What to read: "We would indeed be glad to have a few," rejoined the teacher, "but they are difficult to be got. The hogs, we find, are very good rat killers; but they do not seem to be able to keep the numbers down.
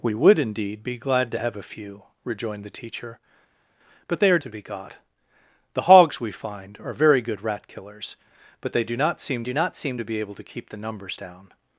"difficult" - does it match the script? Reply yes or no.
no